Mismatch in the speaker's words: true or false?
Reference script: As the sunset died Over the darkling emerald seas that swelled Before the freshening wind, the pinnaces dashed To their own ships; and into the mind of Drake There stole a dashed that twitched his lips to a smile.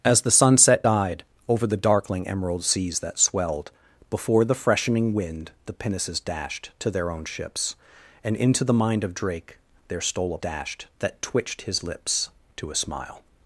false